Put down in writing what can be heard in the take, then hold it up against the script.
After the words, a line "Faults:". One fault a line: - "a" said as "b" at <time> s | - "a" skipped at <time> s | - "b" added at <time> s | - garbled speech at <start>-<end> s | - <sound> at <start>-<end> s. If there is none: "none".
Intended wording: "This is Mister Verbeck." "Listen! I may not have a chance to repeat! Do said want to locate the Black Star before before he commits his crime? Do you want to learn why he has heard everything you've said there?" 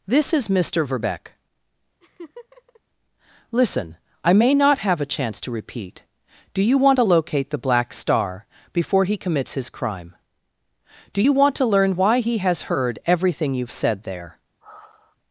"This is Mister Verbeck." "Listen! I may not have a chance to repeat! Do you want to locate the Black Star before he commits his crime? Do you want to learn why he has heard everything you've said there?"
Faults:
- laugh at 2.0-2.8 s
- "said" said as "you" at 6.6 s
- "before" skipped at 9.1 s
- sigh at 14.6-15.2 s